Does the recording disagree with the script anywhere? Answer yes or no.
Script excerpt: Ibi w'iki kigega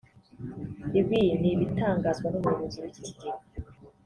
yes